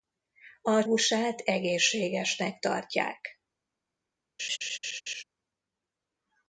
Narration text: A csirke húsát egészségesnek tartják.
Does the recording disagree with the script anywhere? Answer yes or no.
yes